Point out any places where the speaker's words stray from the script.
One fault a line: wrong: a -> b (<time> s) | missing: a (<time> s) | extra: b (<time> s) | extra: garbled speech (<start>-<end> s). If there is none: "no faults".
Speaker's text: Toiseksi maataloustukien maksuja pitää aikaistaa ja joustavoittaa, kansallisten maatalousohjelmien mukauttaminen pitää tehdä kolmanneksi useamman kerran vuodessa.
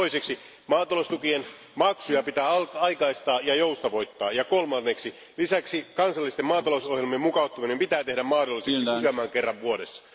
extra: ja kolmanneksi lisäksi (4.3 s)
wrong: kolmanneksi -> mahdolliseksi (8.2 s)